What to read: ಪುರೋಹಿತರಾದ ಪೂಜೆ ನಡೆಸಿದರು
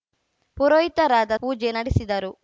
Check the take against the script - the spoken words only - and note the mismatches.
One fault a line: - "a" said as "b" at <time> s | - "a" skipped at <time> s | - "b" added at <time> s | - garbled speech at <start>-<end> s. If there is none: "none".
none